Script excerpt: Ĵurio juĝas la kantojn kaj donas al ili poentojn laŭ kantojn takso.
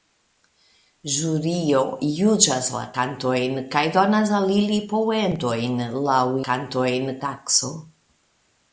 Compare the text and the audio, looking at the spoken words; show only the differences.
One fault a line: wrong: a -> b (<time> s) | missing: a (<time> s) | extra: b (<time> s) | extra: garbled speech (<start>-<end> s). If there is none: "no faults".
no faults